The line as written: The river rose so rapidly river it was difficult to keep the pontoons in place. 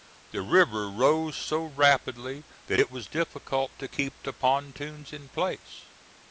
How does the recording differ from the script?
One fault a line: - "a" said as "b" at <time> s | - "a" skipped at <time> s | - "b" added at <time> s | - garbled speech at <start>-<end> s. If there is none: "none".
- "river" said as "that" at 2.6 s